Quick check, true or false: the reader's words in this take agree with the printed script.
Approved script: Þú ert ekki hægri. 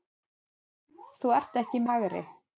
true